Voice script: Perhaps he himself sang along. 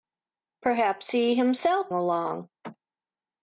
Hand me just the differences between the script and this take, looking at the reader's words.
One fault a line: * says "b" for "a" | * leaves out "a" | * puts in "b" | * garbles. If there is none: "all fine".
* leaves out "sang"